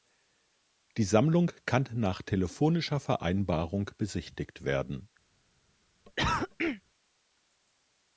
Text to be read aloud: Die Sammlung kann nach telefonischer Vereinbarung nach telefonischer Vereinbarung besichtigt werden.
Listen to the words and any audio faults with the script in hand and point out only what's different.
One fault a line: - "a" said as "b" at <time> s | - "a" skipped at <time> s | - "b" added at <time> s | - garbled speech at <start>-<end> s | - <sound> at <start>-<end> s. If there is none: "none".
- "nach telefonischer Vereinbarung" skipped at 3.9 s
- cough at 6.1-6.8 s